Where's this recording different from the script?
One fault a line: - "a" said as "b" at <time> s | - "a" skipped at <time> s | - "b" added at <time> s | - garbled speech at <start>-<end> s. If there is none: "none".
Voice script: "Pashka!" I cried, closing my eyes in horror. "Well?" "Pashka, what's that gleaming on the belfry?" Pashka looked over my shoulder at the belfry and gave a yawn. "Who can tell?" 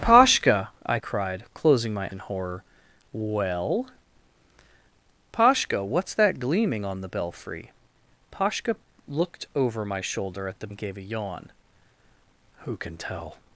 - "eyes" skipped at 2.1 s
- "belfry" skipped at 10.7 s